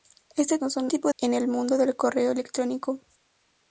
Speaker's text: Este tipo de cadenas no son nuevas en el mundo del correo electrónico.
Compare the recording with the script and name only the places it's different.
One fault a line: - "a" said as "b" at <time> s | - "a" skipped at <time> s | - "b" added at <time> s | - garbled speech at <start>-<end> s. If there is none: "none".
- "tipo de cadenas" skipped at 0.6 s
- "nuevas" said as "tipo" at 0.9 s